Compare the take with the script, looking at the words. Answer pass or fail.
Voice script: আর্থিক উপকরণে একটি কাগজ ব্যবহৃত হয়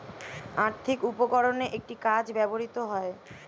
pass